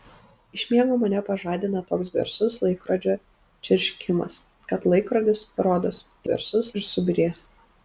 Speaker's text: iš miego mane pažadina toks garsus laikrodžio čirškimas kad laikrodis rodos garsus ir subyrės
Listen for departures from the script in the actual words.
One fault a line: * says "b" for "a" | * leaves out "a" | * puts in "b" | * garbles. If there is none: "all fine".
all fine